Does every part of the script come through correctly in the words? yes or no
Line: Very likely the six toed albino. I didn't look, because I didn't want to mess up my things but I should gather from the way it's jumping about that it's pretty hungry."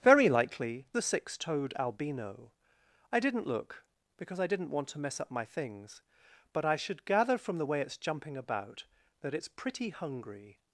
yes